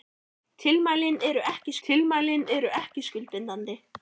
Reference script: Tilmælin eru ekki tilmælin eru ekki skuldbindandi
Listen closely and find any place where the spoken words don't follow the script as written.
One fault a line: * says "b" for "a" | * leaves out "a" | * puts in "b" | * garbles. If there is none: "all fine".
all fine